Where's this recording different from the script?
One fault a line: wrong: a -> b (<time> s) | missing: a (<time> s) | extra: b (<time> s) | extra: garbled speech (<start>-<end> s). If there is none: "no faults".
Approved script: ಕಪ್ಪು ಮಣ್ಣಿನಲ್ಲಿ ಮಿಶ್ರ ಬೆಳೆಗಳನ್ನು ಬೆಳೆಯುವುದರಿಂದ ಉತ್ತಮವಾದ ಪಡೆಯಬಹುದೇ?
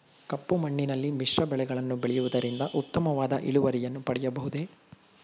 extra: ಇಳುವರಿಯನ್ನು (3.4 s)